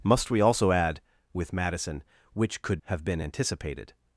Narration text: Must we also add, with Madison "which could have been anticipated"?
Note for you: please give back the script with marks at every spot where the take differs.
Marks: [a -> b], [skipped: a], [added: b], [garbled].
Must we also add, with Madison "which could have been anticipated"?